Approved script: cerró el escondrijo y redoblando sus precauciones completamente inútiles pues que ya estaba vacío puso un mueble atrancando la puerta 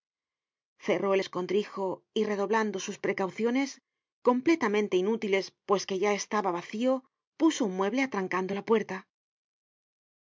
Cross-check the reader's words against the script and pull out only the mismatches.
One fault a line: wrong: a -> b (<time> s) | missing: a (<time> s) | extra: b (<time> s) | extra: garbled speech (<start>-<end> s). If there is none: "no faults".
no faults